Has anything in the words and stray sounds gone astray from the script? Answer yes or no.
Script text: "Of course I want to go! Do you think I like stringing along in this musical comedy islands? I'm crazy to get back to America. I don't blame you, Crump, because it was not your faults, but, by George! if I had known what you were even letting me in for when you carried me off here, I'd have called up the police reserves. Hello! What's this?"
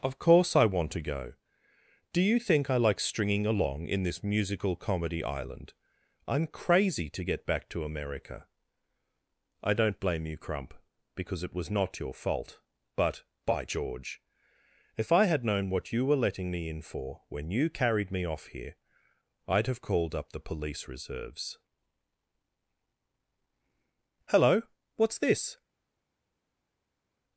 yes